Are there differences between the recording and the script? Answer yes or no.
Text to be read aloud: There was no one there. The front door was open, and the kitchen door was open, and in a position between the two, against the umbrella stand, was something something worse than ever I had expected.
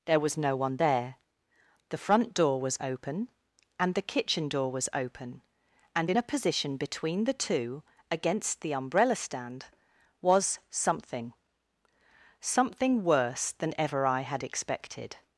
no